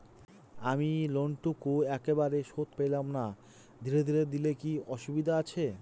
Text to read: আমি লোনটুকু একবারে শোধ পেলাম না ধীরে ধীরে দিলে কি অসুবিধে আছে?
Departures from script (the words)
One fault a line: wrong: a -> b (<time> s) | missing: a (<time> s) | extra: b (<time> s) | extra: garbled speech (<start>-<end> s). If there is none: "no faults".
no faults